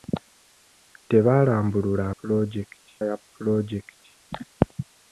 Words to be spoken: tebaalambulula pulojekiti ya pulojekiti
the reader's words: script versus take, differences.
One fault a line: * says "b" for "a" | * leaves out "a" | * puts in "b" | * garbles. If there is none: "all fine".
all fine